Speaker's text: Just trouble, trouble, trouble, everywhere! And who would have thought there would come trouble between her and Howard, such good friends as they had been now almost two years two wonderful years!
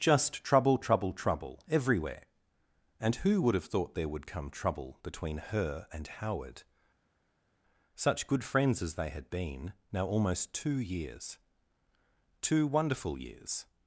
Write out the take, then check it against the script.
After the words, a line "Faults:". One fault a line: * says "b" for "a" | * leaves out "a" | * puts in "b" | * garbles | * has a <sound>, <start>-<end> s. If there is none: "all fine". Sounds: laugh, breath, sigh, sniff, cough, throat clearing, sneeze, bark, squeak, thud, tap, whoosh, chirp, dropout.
Just trouble, trouble, trouble, everywhere! And who would have thought there would come trouble between her and Howard, such good friends as they had been now almost two years two wonderful years!
Faults:
all fine